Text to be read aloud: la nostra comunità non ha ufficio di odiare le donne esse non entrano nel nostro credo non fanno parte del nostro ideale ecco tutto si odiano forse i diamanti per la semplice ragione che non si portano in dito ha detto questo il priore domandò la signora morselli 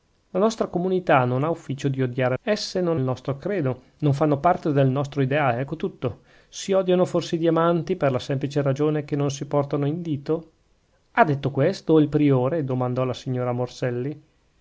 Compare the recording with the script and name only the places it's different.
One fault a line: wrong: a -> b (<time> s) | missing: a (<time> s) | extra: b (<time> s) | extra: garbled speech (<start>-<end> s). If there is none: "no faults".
missing: le donne (2.4 s)
missing: entrano nel (3.0 s)